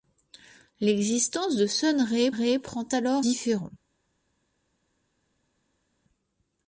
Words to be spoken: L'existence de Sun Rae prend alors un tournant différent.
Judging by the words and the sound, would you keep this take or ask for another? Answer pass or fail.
fail